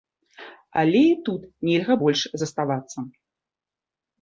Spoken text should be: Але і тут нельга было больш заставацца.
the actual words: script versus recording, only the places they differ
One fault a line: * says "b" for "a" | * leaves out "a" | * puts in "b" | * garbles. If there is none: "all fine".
* leaves out "было"